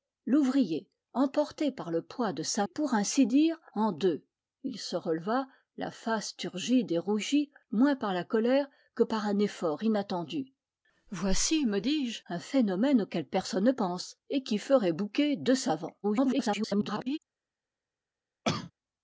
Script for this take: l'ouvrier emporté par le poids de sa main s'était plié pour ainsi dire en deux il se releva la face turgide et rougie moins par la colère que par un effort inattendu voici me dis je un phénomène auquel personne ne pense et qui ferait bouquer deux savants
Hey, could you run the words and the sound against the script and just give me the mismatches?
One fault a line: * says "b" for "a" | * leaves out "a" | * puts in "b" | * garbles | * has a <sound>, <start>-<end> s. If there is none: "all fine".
* leaves out "main s'était plié"
* garbles
* has a cough, 18.4-18.7 s